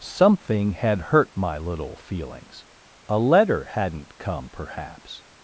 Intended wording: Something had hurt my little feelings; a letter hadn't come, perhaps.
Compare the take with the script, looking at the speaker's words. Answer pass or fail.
pass